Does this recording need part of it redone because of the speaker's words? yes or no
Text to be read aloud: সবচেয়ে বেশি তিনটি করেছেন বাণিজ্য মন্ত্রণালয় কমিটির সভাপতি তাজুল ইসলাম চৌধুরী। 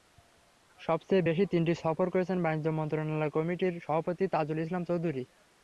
yes